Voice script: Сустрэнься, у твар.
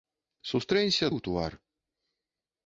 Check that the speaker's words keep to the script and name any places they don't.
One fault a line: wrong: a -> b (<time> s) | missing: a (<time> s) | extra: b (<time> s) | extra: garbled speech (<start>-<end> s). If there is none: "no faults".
no faults